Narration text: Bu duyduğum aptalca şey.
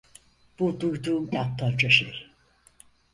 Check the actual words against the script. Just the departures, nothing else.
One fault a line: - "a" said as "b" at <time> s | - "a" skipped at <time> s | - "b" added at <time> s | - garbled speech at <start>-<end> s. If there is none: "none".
none